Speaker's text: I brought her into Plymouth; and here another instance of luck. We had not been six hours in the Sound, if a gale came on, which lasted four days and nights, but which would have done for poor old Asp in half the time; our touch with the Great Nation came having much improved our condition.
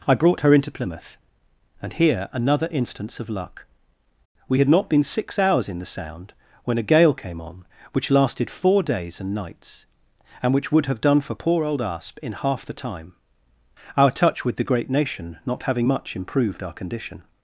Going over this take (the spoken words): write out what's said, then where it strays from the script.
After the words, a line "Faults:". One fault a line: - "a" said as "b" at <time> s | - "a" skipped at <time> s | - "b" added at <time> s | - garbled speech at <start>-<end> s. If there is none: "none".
I brought her into Plymouth; and here another instance of luck. We had not been six hours in the Sound, when a gale came on, which lasted four days and nights, and which would have done for poor old Asp in half the time; our touch with the Great Nation not having much improved our condition.
Faults:
- "if" said as "when" at 6.6 s
- "but" said as "and" at 10.4 s
- "came" said as "not" at 15.5 s